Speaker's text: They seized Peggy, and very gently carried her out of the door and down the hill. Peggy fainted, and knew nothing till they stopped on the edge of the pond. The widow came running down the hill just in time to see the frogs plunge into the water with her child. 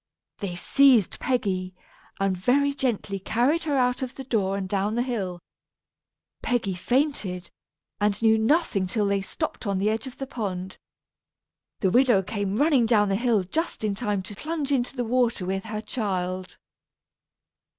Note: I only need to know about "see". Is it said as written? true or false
false